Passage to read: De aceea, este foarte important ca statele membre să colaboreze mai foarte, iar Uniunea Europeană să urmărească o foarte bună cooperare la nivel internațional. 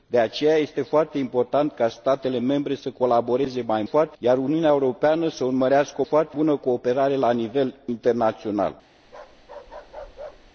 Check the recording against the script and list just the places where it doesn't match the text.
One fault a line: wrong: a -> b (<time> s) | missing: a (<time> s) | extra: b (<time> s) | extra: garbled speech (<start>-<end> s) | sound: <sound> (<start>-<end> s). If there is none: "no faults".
sound: bark (9.0-10.5 s)